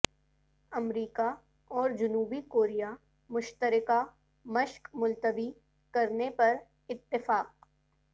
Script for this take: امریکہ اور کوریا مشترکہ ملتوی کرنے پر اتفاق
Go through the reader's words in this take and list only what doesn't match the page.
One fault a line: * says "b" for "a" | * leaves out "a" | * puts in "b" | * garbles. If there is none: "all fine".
* puts in "جنوبی"
* puts in "مشق"